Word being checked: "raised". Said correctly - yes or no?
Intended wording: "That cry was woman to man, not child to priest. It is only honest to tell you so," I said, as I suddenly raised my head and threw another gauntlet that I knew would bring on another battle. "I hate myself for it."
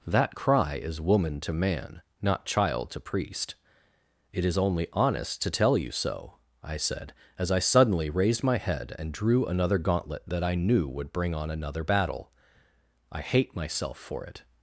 yes